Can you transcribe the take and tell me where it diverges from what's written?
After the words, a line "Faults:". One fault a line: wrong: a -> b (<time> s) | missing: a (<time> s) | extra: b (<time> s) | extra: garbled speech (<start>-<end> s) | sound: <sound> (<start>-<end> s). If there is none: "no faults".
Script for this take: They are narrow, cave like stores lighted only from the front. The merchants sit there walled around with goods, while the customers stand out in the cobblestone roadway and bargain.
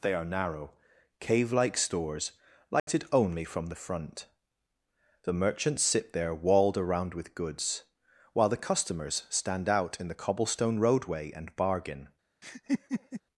They are narrow, cave like stores lighted only from the front. The merchants sit there walled around with goods, while the customers stand out in the cobblestone roadway and bargain.
Faults:
sound: dropout (2.8-2.9 s)
sound: laugh (12.4-13.2 s)